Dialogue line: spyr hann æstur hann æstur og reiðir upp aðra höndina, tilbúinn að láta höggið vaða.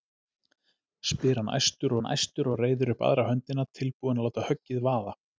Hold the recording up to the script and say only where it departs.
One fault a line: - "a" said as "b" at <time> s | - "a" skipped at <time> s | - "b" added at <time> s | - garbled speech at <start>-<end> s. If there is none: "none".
none